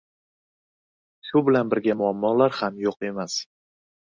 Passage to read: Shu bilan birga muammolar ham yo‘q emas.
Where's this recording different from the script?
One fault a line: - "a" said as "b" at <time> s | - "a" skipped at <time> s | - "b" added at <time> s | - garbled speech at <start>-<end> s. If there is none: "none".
none